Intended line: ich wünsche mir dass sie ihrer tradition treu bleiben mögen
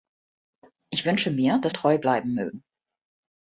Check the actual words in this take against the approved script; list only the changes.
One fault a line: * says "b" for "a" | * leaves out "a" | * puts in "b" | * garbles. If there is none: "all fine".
* leaves out "sie ihrer tradition"